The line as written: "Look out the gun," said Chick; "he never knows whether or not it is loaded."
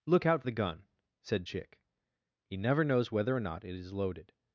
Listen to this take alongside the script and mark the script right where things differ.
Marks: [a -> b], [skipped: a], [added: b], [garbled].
"Look out the gun," said Chick; "he never knows whether or not it is loaded."